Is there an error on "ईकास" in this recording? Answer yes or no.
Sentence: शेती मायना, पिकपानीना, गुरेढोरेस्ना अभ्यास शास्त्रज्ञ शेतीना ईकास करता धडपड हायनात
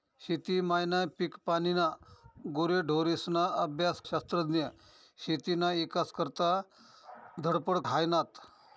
no